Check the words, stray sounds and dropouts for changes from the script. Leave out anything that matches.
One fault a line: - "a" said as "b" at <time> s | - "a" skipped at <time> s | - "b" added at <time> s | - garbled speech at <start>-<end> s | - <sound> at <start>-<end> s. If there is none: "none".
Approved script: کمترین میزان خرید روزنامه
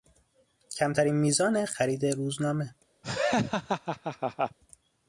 - laugh at 3.0-4.6 s